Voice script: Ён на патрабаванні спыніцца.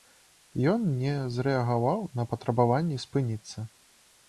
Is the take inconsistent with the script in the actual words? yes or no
yes